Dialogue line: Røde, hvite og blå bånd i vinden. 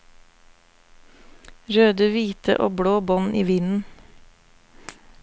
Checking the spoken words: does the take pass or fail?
pass